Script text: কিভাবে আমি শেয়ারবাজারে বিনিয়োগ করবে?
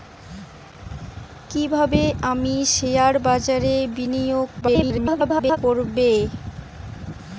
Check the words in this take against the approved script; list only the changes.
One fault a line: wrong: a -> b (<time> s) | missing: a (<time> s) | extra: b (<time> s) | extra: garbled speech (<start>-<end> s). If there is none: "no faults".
extra: garbled speech (4.6-5.6 s)